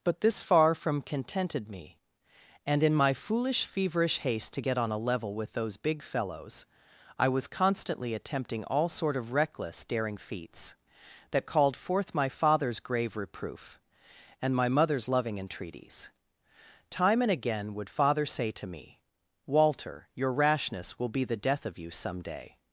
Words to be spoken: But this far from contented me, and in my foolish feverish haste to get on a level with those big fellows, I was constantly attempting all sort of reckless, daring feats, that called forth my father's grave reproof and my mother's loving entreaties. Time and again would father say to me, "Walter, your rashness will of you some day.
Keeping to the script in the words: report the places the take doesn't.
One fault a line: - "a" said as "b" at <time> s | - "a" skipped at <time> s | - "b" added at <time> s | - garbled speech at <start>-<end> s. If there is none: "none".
- "be the death" added at 21.1 s